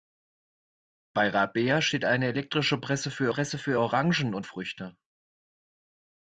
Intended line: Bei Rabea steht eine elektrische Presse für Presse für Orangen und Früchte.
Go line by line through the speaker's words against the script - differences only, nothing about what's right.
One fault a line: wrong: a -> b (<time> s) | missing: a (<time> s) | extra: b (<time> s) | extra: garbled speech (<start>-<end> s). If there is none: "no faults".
no faults